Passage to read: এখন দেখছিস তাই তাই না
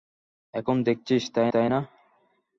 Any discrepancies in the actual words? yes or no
no